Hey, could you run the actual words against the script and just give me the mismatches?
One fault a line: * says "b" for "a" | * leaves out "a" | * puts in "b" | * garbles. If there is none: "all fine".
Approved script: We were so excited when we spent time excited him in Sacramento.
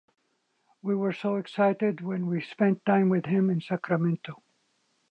* says "with" for "excited"